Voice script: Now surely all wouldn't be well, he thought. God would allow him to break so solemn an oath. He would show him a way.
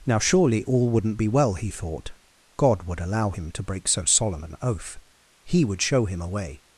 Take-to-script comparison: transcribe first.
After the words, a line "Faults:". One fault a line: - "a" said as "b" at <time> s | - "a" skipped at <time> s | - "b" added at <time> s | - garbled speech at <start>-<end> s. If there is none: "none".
Now surely all wouldn't be well, he thought. God would allow him to break so solemn an oath. He would show him a way.
Faults:
none